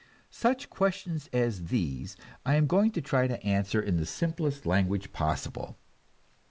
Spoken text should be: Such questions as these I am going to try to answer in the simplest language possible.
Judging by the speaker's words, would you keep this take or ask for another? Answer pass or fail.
pass